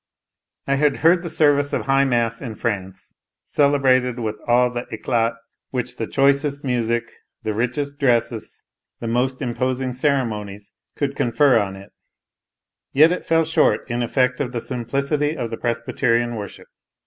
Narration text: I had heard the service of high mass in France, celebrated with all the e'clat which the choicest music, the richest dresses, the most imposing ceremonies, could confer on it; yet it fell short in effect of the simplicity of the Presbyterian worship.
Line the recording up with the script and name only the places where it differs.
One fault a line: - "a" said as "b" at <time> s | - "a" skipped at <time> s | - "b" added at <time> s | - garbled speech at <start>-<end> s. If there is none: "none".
none